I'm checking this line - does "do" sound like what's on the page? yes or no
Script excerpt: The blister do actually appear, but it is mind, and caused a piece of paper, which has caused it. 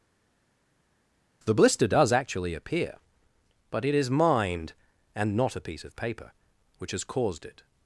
no